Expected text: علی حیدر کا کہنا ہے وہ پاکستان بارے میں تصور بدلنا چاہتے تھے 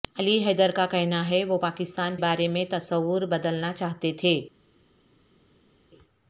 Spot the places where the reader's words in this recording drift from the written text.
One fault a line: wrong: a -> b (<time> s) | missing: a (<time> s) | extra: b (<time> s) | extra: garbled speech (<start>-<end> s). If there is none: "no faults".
no faults